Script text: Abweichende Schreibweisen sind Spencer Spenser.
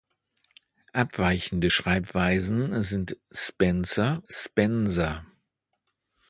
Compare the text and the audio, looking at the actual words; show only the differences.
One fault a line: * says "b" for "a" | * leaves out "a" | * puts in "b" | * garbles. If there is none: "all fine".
all fine